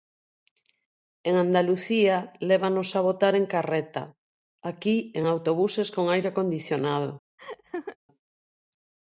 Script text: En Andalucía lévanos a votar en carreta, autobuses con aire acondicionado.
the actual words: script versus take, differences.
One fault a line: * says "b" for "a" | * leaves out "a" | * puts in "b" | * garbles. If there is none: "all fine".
* puts in "aquí en"